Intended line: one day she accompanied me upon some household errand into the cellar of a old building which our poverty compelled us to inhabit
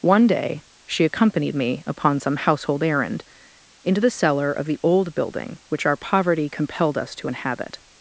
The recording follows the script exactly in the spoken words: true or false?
false